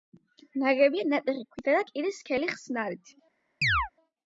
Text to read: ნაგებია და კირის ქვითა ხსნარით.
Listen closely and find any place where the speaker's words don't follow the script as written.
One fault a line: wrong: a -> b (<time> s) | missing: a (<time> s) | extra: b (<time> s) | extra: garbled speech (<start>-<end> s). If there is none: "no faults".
extra: ნატეხი ქვითა (1.1 s)
wrong: ქვითა -> სქელი (2.2 s)